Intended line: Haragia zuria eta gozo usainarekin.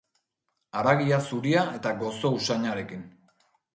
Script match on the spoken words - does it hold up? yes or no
yes